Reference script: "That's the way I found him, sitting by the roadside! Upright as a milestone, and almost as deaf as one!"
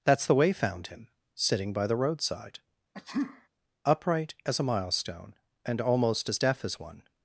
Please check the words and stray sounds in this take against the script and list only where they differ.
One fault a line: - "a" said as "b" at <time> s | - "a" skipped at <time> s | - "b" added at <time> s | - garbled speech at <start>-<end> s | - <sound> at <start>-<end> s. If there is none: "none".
- "I" skipped at 0.5 s
- sneeze at 2.9-3.5 s